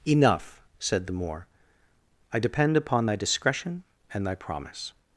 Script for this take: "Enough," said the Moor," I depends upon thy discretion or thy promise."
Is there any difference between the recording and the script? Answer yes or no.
yes